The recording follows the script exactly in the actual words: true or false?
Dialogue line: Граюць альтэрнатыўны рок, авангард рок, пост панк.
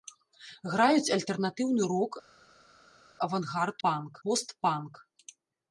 false